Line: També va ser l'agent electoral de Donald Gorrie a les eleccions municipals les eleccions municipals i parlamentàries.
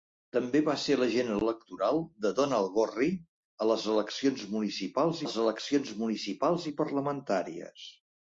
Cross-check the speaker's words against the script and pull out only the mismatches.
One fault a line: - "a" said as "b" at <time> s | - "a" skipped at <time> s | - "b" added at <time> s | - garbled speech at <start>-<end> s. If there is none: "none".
none